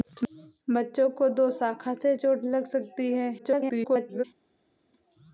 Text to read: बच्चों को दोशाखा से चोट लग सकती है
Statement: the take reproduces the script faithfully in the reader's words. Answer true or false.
false